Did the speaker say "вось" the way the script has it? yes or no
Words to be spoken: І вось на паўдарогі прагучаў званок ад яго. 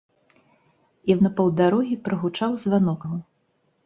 no